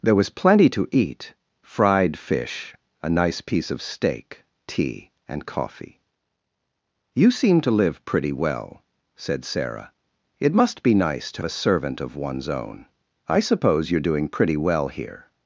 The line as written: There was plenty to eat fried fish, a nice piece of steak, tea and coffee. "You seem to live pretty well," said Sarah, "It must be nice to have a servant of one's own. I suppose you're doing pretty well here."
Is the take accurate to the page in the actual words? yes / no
no